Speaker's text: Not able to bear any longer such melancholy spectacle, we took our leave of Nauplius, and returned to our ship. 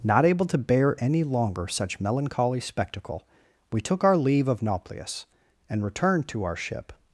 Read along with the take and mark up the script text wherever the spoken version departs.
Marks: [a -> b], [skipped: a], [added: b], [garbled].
Not able to bear any longer such melancholy spectacle, we took our leave of Nauplius, and returned to our ship.